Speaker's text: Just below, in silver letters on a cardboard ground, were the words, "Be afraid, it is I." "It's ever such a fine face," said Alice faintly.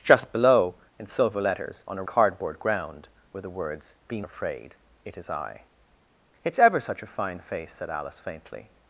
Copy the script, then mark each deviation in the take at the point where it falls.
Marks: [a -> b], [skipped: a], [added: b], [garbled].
Just below, in silver letters on a cardboard ground, were the words, "Be afraid, it is I." "It's ever such a fine face," said Alice faintly.